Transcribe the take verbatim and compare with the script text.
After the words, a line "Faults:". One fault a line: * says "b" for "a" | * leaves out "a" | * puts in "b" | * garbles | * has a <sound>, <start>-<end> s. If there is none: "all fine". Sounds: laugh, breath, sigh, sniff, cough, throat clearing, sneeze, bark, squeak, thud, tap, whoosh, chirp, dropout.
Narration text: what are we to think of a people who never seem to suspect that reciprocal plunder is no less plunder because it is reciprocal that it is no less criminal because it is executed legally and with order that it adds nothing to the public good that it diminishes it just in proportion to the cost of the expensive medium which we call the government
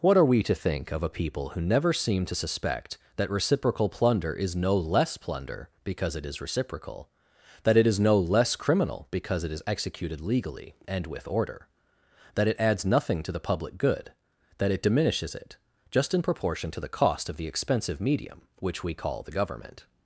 what are we to think of a people who never seem to suspect that reciprocal plunder is no less plunder because it is reciprocal that it is no less criminal because it is executed legally and with order that it adds nothing to the public good that it diminishes it just in proportion to the cost of the expensive medium which we call the government
Faults:
all fine